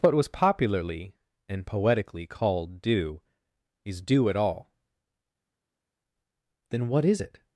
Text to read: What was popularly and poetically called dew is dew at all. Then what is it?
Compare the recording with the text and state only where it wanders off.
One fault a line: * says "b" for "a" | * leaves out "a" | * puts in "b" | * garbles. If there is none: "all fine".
all fine